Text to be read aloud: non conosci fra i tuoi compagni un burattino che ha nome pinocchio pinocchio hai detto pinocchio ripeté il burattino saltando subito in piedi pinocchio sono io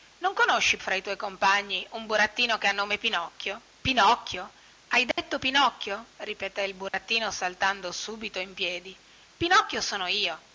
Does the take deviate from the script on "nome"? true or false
false